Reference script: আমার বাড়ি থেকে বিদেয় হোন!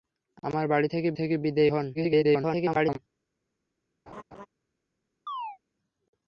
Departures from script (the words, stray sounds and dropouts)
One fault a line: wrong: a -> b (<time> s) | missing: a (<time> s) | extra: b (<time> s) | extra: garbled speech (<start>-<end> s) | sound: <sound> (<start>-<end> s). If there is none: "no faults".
extra: থেকে (1.1 s)
extra: garbled speech (1.9-3.0 s)
sound: laugh (4.1-4.5 s)
sound: chirp (5.3-5.6 s)